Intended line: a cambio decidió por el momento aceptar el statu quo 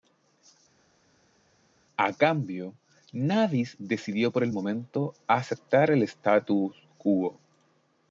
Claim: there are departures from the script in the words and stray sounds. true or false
true